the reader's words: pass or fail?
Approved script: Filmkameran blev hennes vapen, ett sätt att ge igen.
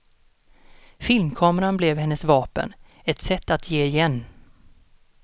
pass